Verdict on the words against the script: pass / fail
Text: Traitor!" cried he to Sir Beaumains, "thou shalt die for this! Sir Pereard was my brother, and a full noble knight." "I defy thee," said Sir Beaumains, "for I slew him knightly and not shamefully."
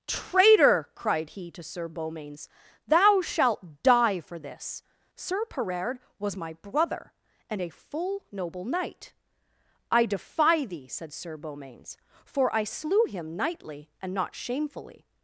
pass